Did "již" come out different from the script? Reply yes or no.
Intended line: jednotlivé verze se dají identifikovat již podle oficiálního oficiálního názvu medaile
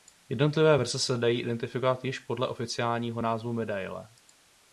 no